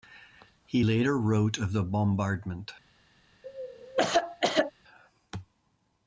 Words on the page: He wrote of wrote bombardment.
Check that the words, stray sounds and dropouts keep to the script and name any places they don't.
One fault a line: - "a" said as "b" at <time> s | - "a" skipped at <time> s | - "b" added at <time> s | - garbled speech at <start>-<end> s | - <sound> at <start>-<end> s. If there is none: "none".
- "later" added at 0.8 s
- "wrote" said as "the" at 1.7 s
- cough at 3.4-4.7 s